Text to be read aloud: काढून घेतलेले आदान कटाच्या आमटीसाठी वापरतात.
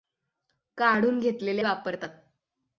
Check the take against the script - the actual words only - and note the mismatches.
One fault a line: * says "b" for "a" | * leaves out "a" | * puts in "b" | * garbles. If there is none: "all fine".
* leaves out "आदान कटाच्या आमटीसाठी"